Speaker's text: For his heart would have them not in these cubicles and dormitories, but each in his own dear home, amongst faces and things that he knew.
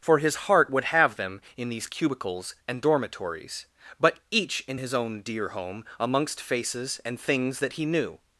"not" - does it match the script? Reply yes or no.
no